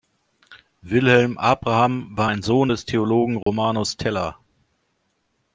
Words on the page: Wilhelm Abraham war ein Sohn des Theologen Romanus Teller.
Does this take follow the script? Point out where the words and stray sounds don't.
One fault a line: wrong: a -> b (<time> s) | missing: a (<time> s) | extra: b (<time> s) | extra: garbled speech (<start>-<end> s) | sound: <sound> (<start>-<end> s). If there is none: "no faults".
sound: dropout (3.4-3.5 s)